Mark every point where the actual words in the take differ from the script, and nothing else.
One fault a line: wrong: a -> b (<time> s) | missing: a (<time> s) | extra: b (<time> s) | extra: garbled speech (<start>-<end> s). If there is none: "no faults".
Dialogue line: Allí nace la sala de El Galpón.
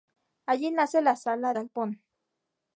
missing: de El (1.5 s)